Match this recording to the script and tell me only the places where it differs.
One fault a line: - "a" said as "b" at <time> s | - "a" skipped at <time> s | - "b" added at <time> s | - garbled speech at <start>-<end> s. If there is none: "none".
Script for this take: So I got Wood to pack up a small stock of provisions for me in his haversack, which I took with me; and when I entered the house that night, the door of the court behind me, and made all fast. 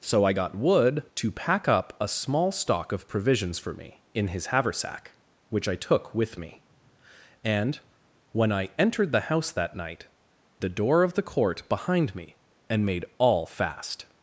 none